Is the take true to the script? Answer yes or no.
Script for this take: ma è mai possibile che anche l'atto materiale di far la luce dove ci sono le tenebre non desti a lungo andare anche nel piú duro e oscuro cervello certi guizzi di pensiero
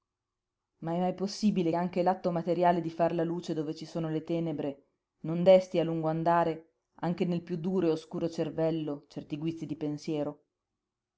no